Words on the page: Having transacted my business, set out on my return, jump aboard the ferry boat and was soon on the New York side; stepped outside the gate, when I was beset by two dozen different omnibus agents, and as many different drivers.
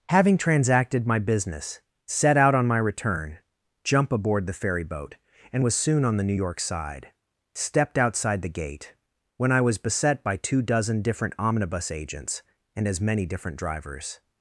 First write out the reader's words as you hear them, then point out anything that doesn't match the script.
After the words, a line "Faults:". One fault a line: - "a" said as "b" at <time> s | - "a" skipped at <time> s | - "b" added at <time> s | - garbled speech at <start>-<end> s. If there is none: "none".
Having transacted my business, set out on my return, jump aboard the ferry boat and was soon on the New York side; stepped outside the gate, when I was beset by two dozen different omnibus agents, and as many different drivers.
Faults:
none